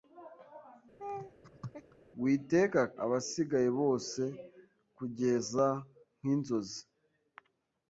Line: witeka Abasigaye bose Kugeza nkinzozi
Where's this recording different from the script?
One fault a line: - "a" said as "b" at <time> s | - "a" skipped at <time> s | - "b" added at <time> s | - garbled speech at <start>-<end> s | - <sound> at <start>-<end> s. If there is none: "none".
- laugh at 1.0-2.0 s